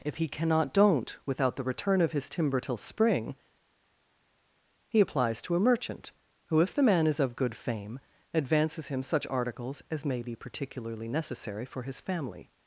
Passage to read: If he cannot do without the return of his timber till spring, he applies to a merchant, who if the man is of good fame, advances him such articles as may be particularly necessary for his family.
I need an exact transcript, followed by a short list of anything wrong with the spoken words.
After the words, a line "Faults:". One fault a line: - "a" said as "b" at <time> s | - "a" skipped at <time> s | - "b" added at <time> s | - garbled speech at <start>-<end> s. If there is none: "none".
If he cannot don't without the return of his timber till spring, he applies to a merchant, who if the man is of good fame, advances him such articles as may be particularly necessary for his family.
Faults:
- "do" said as "don't" at 0.7 s